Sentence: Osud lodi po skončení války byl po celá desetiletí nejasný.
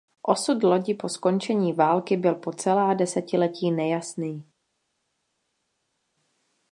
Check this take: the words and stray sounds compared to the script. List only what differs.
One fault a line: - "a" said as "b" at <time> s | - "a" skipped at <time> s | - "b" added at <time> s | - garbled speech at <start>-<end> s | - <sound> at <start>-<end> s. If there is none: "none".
none